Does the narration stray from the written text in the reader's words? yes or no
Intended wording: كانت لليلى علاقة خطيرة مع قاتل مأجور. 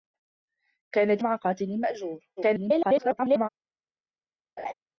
yes